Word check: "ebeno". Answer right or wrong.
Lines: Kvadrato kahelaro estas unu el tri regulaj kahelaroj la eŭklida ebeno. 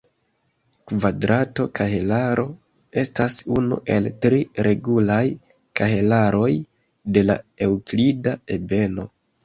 right